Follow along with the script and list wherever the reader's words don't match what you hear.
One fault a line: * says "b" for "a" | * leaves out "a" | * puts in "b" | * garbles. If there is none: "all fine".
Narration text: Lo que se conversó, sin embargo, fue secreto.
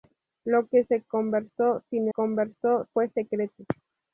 * says "conversó" for "embargo"